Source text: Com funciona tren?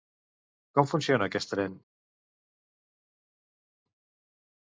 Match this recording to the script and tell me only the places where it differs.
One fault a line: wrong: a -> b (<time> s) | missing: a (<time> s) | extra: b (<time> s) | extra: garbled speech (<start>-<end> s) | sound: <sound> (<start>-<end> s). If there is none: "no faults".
extra: aquest (1.3 s)